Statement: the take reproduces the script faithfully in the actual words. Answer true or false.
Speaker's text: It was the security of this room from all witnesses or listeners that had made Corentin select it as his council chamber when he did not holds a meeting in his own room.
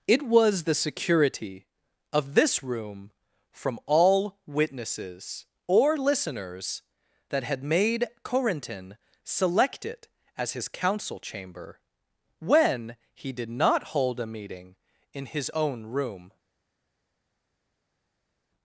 false